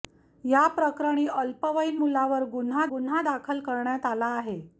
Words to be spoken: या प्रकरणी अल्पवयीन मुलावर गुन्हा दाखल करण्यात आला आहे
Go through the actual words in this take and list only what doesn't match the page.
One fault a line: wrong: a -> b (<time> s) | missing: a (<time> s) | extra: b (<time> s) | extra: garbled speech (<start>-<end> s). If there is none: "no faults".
extra: गुन्हा (2.9 s)